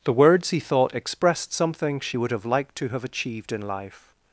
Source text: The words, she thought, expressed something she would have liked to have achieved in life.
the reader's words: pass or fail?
fail